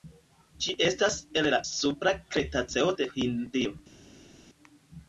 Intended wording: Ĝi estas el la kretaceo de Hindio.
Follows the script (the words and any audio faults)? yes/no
no